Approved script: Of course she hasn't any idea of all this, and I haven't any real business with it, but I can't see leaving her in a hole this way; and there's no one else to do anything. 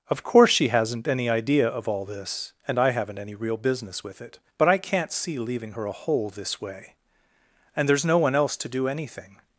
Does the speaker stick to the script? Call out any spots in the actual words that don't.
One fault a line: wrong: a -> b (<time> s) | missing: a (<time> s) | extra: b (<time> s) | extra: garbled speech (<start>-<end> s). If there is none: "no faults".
missing: in (5.8 s)